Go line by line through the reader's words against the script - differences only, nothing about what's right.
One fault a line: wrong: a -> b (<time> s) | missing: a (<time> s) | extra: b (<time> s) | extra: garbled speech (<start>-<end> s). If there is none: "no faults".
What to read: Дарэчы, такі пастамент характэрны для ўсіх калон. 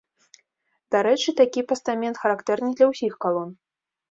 no faults